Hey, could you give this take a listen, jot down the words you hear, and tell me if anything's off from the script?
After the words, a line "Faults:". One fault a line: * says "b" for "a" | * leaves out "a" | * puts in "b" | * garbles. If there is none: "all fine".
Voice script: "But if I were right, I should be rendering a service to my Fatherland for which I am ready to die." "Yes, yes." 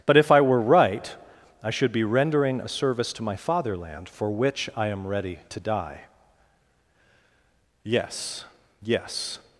"But if I were right, I should be rendering a service to my Fatherland for which I am ready to die." "Yes, yes."
Faults:
all fine